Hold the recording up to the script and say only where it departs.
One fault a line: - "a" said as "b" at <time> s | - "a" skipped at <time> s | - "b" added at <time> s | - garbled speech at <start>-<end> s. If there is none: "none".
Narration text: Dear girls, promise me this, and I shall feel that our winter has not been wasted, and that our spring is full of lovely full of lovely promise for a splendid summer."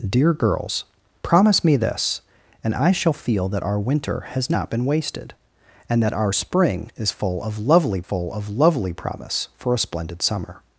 none